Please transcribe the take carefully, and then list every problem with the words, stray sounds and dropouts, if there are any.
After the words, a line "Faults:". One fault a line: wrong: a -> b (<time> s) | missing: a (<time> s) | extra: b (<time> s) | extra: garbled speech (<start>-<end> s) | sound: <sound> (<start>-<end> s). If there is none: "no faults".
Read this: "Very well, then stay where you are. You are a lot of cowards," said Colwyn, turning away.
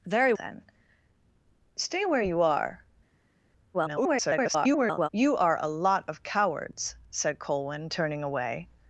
"Very then stay where you are. [garbled] You are a lot of cowards," said Colwyn, turning away.
Faults:
missing: well (0.3 s)
extra: garbled speech (3.7-5.1 s)